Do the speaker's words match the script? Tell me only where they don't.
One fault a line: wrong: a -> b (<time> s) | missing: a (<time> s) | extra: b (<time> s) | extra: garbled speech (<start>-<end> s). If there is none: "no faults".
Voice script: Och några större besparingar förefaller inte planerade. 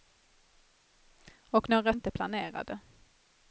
missing: större besparingar förefaller (1.9 s)